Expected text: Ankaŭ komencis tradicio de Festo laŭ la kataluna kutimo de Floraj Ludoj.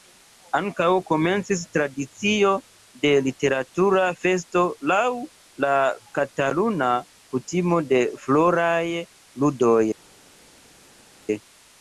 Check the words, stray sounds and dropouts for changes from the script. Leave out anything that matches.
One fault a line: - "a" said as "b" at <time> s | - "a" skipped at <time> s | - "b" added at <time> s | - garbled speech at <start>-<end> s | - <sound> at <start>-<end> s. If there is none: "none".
- "Literatura" added at 3.3 s